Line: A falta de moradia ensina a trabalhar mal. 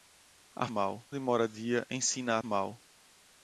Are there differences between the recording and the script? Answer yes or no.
yes